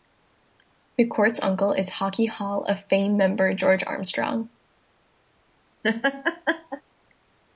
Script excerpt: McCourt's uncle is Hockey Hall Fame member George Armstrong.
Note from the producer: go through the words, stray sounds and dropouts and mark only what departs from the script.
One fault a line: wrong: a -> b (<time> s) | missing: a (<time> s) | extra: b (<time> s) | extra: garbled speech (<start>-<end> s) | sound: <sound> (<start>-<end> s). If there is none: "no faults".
extra: of (2.6 s)
sound: laugh (5.8-6.8 s)